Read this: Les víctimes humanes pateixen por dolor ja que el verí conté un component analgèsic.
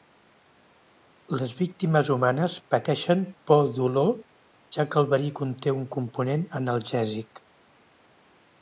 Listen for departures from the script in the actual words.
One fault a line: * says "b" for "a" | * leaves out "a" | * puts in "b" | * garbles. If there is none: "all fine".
all fine